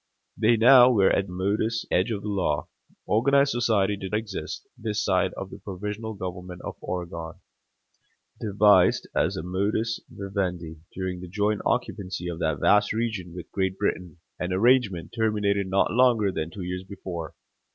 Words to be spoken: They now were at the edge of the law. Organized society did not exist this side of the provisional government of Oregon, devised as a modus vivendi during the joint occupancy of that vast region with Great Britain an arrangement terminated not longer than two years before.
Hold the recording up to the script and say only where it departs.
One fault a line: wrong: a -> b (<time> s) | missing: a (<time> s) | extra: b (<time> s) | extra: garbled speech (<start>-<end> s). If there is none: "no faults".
wrong: the -> modus (1.3 s)
missing: not (4.1 s)